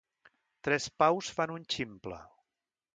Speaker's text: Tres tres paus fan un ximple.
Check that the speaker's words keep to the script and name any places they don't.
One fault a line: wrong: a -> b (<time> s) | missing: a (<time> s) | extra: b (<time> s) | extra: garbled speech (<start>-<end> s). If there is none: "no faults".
missing: tres (0.9 s)